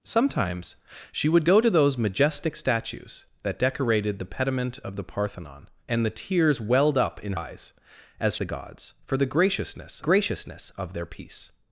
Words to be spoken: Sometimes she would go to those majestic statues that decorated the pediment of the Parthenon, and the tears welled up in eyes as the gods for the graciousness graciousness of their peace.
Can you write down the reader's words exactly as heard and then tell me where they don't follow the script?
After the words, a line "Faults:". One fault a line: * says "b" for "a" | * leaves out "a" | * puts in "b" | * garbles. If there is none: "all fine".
Sometimes she would go to those majestic statues that decorated the pediment of the Parthenon, and the tears welled up in eyes as the gods for the graciousness graciousness of their peace.
Faults:
all fine